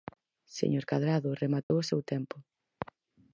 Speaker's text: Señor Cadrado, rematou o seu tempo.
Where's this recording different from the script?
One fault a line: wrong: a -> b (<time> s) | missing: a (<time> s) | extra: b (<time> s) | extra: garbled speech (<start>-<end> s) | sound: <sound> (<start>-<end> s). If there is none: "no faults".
sound: dropout (1.6-1.7 s)